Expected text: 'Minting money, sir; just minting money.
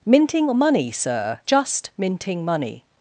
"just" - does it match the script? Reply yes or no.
yes